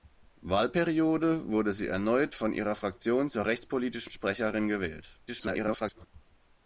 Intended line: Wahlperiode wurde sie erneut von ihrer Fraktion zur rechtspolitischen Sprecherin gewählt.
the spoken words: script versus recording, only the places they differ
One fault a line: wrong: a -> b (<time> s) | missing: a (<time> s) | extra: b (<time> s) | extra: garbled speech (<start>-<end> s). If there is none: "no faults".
extra: garbled speech (5.3-6.1 s)